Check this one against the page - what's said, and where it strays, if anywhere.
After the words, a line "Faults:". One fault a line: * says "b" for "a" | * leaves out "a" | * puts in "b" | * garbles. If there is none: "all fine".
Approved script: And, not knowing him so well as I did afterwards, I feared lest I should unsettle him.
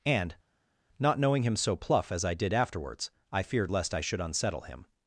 And, not knowing him so pluff as I did afterwards, I feared lest I should unsettle him.
Faults:
* says "pluff" for "well"